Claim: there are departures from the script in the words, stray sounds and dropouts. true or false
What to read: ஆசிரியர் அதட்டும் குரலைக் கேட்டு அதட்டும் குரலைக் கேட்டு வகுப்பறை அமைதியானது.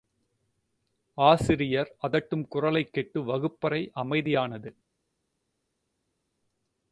true